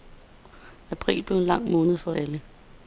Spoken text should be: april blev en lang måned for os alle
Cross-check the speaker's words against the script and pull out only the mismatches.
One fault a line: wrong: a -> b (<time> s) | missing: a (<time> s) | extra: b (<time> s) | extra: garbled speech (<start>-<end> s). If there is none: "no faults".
missing: os (2.1 s)